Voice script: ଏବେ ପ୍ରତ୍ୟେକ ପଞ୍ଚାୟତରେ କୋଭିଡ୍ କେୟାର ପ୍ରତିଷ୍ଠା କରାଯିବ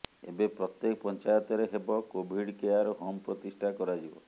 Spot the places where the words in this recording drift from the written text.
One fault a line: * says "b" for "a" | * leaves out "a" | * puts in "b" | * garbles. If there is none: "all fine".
* puts in "ହେବ"
* puts in "ହୋମ୍"